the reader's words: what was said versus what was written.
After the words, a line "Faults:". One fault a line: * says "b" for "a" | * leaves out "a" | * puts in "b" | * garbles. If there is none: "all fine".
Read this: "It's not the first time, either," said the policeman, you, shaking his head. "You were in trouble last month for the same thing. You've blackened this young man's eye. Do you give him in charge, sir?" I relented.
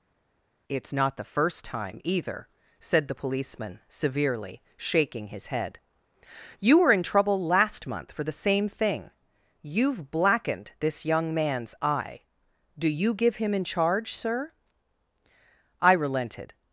"It's not the first time, either," said the policeman, severely, shaking his head. "You were in trouble last month for the same thing. You've blackened this young man's eye. Do you give him in charge, sir?" I relented.
Faults:
* says "severely" for "you"